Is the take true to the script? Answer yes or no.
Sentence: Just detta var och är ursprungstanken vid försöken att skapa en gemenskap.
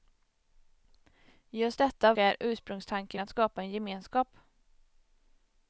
no